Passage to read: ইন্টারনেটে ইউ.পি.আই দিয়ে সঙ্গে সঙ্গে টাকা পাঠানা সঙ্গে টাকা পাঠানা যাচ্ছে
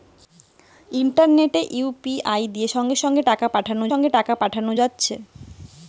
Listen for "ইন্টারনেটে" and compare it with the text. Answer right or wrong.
right